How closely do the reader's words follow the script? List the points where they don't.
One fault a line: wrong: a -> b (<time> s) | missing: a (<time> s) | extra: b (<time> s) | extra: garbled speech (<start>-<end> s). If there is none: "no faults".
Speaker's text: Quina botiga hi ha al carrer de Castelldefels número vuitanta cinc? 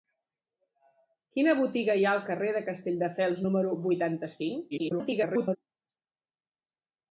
extra: garbled speech (4.7-5.6 s)